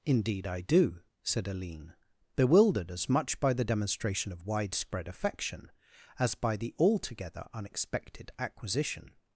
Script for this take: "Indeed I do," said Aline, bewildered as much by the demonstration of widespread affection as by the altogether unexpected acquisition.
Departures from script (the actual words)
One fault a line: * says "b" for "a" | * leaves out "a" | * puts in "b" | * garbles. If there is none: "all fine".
all fine